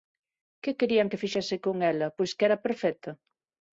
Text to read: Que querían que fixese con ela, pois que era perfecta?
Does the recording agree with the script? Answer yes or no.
yes